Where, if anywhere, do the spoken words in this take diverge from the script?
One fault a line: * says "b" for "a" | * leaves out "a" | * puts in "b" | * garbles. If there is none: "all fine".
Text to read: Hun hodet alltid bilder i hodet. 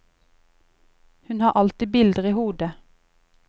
* says "har" for "hodet"